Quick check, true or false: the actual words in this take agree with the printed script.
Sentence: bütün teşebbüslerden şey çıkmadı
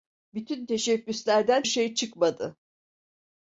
true